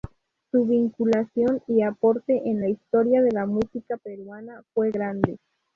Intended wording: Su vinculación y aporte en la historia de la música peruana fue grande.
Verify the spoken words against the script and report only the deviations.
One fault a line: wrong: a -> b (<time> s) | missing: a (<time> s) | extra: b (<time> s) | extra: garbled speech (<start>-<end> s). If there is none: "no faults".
no faults